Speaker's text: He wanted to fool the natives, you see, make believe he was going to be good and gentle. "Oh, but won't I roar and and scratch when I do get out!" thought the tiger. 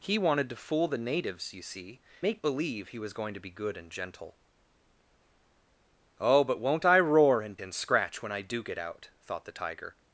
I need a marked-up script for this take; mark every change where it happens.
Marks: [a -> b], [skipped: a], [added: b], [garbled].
He wanted to fool the natives, you see, make believe he was going to be good and gentle. "Oh, but won't I roar and and scratch when I do get out!" thought the tiger.